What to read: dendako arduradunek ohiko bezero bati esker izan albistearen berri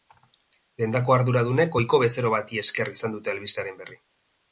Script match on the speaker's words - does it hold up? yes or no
no